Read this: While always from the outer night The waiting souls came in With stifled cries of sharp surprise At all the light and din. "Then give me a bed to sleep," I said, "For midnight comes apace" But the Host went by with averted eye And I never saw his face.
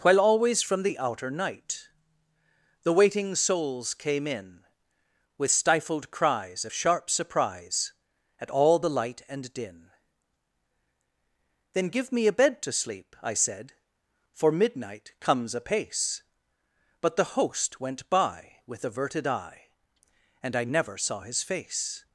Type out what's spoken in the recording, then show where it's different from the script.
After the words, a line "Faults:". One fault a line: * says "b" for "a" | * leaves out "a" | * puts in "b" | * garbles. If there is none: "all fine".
While always from the outer night The waiting souls came in With stifled cries of sharp surprise At all the light and din. "Then give me a bed to sleep," I said, "For midnight comes apace" But the Host went by with averted eye And I never saw his face.
Faults:
all fine